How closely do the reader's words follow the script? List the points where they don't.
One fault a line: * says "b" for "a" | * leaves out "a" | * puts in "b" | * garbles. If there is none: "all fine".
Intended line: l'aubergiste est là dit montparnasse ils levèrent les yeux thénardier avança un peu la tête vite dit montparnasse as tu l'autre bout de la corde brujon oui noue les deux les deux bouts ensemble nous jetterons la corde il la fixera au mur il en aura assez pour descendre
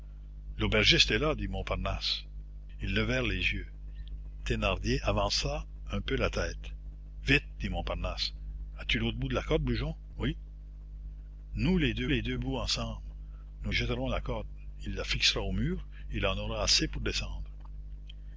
all fine